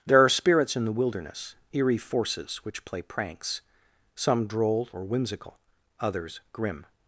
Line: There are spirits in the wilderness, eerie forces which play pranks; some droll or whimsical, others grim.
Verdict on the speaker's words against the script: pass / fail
pass